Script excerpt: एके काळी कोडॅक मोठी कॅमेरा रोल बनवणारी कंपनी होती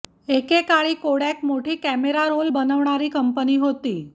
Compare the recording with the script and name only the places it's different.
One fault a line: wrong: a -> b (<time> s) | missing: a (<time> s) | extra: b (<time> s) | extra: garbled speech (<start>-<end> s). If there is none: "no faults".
no faults